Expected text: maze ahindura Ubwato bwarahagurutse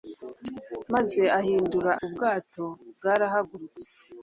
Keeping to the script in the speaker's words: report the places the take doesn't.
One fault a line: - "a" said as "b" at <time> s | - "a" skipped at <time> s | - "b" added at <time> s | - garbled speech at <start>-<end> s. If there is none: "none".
none